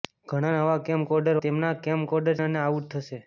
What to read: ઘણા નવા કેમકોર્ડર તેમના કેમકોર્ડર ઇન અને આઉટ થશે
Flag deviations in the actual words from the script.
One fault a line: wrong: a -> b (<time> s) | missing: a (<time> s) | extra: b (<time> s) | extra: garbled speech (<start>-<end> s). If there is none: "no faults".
no faults